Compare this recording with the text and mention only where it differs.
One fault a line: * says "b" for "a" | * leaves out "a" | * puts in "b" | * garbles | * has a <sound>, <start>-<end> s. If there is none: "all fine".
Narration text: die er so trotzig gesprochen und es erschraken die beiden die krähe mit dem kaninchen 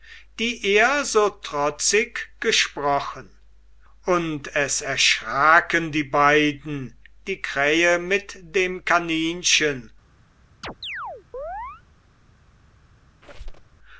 * has a chirp, 10.6-11.8 s
* has a squeak, 13.2-13.8 s